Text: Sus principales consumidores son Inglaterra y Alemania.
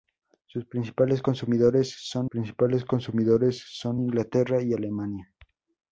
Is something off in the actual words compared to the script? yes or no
yes